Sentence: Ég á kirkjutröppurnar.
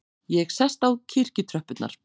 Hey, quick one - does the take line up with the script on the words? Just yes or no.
no